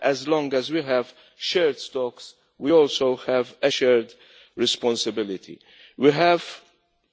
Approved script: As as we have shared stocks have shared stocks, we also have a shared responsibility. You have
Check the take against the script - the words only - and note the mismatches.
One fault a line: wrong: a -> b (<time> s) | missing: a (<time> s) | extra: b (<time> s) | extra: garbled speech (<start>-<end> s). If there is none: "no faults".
extra: long (0.3 s)
missing: have shared stocks (2.3 s)
wrong: You -> We (6.0 s)